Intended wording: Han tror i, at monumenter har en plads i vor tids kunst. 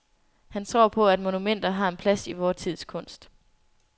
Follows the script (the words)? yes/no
no